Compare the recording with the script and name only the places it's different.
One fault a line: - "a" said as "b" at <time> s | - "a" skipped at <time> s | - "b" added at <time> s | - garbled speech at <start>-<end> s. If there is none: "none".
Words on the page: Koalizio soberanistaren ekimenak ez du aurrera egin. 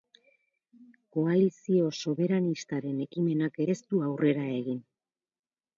none